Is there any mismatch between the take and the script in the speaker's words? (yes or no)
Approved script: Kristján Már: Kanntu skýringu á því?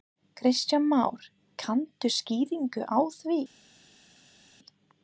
no